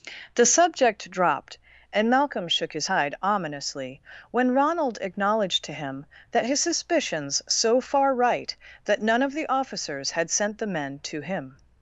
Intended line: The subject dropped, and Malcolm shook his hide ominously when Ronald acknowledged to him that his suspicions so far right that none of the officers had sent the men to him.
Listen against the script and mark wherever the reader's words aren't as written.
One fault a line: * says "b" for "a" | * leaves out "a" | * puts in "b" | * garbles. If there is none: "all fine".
all fine